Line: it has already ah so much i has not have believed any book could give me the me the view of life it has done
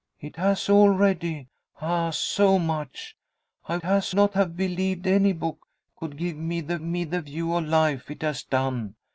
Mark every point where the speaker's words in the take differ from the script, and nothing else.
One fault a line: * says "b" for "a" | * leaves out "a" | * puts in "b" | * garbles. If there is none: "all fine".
all fine